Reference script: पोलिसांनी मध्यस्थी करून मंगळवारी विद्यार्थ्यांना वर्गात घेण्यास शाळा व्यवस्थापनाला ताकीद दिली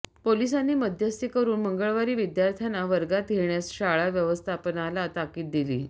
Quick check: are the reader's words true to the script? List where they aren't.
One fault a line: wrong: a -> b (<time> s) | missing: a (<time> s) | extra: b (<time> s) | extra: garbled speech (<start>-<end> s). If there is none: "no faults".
no faults